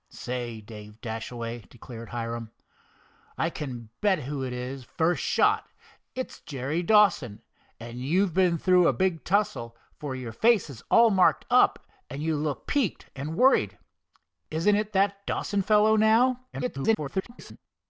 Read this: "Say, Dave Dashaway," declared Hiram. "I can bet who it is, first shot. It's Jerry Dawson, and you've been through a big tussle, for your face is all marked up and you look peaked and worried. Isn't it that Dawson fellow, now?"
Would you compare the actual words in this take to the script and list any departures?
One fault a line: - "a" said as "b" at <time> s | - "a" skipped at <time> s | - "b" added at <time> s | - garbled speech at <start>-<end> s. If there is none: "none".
- garbled speech at 16.5-17.6 s